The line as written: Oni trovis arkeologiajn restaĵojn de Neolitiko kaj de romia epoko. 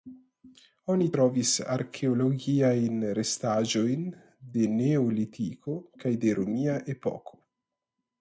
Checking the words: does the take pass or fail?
pass